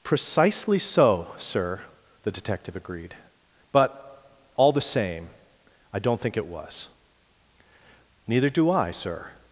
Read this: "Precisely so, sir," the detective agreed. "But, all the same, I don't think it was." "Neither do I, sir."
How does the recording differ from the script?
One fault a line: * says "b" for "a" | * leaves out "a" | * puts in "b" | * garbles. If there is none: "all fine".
all fine